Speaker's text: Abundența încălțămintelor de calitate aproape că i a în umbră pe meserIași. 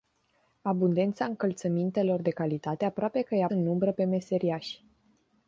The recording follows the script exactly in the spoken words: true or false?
true